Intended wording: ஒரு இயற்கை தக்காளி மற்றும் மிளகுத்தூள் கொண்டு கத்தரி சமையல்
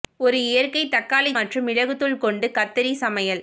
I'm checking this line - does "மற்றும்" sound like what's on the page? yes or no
yes